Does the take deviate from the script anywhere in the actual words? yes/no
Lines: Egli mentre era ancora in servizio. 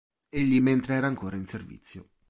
no